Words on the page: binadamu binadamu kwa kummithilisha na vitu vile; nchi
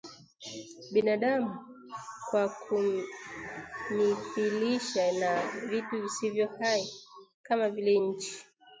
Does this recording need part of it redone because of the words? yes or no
yes